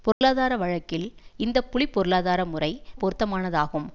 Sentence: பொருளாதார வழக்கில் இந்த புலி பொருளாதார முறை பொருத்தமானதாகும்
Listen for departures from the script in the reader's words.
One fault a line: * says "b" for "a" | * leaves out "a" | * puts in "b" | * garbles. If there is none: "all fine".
all fine